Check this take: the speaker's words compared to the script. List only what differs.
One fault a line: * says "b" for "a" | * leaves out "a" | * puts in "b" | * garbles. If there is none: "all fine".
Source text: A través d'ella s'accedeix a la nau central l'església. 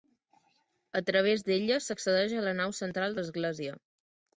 all fine